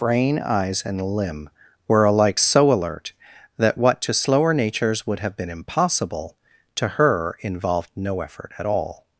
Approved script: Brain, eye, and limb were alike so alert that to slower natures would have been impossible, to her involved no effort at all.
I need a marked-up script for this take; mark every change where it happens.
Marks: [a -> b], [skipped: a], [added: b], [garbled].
Brain, [eye, -> eyes] and limb were alike so alert that [added: what] to slower natures would have been impossible, to her involved no effort at all.